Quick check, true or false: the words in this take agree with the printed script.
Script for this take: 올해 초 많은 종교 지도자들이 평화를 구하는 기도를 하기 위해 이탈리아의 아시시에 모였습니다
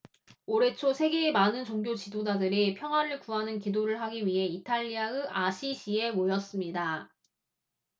false